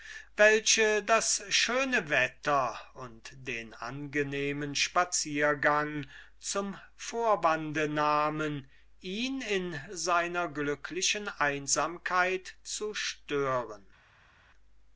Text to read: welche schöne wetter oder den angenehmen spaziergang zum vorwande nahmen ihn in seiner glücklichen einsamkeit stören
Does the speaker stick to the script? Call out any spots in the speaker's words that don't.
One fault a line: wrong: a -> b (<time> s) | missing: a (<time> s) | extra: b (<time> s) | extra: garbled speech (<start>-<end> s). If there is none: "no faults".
extra: das (1.0 s)
wrong: oder -> und (3.0 s)
extra: zu (12.6 s)